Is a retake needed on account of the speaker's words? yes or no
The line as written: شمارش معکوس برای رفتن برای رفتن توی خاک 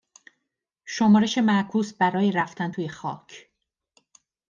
yes